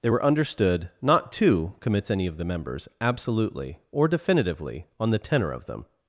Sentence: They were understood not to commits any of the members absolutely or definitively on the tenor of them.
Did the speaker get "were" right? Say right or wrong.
right